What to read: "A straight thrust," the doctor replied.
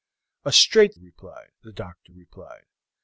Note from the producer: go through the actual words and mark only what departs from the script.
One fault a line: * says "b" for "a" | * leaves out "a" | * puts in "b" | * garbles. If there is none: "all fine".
* says "replied" for "thrust"